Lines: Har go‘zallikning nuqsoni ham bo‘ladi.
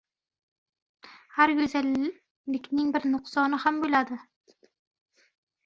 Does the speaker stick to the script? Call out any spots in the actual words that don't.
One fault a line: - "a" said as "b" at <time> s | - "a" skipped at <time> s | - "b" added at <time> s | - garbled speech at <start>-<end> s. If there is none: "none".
- "bir" added at 2.9 s